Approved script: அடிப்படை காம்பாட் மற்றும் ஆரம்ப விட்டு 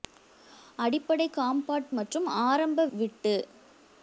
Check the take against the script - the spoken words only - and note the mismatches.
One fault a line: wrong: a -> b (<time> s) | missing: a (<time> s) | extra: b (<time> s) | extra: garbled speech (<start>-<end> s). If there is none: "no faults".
no faults